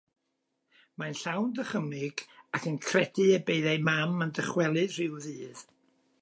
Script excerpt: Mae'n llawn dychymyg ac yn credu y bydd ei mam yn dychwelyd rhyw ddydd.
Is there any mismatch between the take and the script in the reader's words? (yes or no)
no